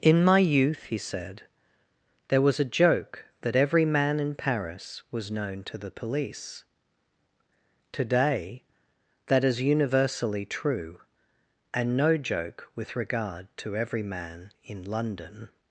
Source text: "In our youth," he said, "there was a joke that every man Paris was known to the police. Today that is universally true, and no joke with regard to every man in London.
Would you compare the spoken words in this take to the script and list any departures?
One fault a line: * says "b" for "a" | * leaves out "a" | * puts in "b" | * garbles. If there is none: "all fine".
* says "my" for "our"
* puts in "in"